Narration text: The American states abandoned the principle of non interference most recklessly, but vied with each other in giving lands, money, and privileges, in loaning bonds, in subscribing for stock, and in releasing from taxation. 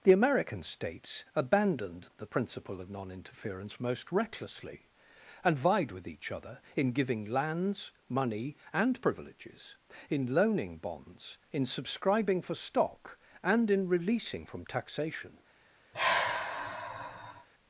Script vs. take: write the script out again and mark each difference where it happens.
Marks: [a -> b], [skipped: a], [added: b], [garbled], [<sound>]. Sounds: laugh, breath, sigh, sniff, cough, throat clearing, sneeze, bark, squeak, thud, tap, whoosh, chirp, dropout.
The American states abandoned the principle of non interference most recklessly, [but -> and] vied with each other in giving lands, money, and privileges, in loaning bonds, in subscribing for stock, and in releasing from taxation. [sigh]